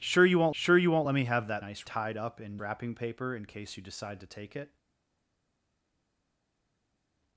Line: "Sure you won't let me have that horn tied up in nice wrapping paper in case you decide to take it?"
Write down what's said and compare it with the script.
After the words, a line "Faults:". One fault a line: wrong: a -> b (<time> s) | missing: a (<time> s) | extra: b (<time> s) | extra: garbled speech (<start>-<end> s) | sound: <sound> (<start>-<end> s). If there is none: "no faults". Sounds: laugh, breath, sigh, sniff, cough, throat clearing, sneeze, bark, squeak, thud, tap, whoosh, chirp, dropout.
"Sure you won't sure you won't let me have that nice tied up in wrapping paper in case you decide to take it?"
Faults:
extra: sure you won't (0.5 s)
wrong: horn -> nice (1.6 s)
missing: nice (2.6 s)